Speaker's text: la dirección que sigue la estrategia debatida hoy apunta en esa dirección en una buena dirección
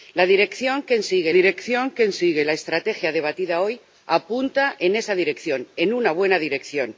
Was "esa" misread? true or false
false